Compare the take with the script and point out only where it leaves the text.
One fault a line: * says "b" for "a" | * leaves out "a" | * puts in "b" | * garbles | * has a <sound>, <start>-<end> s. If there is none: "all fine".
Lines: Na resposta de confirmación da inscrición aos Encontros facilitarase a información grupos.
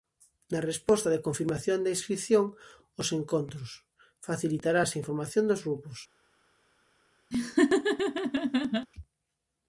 * puts in "dos"
* has a laugh, 7.3-8.9 s